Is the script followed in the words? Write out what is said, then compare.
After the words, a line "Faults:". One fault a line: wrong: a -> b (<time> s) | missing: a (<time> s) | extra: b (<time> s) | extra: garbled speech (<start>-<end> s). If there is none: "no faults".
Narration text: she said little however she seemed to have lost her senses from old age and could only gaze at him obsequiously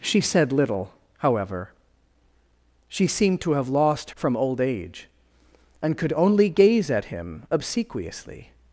she said little however she seemed to have lost from old age and could only gaze at him obsequiously
Faults:
missing: her senses (4.1 s)